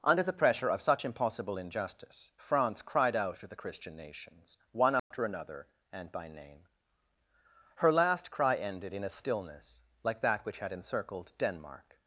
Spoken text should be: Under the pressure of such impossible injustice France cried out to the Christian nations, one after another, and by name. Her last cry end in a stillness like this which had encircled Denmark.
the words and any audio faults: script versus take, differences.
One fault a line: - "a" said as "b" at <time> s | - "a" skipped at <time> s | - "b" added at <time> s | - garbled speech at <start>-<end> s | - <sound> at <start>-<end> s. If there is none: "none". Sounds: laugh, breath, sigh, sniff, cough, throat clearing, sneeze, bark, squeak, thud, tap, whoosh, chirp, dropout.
- dropout at 5.0-5.1 s
- "end" said as "ended" at 8.6 s
- "this" said as "that" at 10.2 s